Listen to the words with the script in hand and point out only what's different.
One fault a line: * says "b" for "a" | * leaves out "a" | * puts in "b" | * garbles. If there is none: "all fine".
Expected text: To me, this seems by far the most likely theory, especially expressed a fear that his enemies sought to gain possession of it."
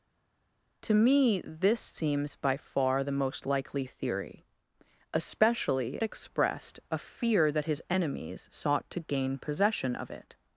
all fine